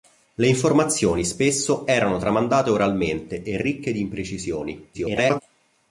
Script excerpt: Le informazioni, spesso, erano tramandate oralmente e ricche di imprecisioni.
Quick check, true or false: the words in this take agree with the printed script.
false